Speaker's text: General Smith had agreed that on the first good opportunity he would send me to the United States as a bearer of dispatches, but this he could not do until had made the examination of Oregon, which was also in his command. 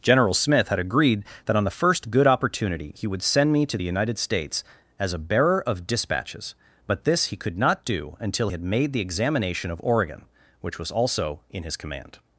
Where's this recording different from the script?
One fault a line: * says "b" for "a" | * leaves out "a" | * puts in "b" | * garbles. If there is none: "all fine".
all fine